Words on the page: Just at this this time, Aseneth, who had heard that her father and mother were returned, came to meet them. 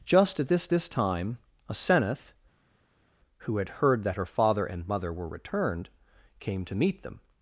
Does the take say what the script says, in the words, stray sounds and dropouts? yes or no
yes